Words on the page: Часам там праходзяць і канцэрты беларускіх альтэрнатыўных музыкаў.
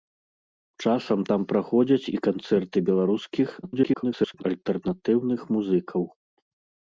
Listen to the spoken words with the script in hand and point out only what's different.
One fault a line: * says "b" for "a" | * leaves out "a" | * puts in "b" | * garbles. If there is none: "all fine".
* garbles